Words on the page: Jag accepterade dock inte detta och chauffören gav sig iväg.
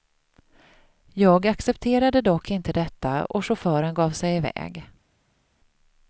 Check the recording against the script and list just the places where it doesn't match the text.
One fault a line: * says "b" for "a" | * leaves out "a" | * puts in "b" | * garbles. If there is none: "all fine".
all fine